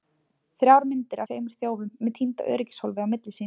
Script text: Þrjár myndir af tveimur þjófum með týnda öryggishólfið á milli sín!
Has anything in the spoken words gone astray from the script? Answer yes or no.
yes